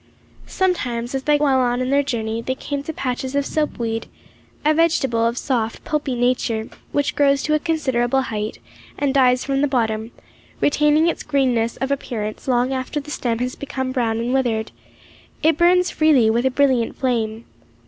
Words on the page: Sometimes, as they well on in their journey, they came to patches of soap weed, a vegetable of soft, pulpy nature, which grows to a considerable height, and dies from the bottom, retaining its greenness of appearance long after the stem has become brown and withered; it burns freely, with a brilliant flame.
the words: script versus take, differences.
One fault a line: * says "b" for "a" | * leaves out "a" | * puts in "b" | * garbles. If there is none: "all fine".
all fine